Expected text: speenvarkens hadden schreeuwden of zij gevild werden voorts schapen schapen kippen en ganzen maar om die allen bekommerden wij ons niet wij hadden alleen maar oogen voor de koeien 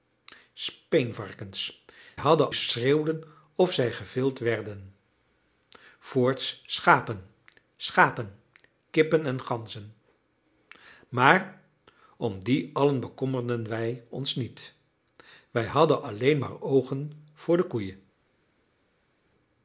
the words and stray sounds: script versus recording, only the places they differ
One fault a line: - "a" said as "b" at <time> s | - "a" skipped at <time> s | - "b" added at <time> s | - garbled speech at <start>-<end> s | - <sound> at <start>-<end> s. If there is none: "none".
none